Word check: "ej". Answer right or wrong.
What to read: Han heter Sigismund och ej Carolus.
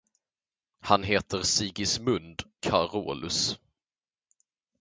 wrong